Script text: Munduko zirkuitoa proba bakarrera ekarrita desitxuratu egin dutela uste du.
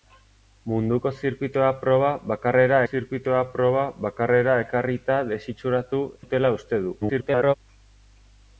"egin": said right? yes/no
no